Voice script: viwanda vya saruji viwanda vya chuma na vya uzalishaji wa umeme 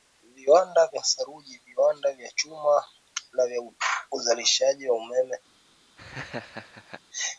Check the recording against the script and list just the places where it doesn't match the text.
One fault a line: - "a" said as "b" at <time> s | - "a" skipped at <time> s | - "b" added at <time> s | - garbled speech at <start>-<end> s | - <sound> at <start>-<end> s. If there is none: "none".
- laugh at 6.0-7.0 s